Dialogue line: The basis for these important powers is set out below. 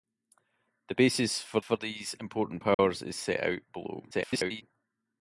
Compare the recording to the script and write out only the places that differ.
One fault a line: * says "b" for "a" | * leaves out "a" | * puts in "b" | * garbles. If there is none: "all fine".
* puts in "for"
* garbles